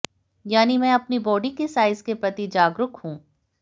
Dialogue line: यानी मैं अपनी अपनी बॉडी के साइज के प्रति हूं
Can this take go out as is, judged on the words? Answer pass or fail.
fail